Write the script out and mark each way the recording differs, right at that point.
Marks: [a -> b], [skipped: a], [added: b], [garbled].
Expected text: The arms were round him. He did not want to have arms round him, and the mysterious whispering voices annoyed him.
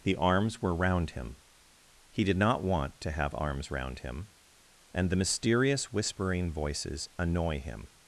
The arms were round him. He did not want to have arms round him, and the mysterious whispering voices [annoyed -> annoy] him.